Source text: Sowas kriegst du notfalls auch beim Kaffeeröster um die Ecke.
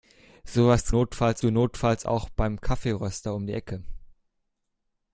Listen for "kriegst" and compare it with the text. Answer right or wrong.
wrong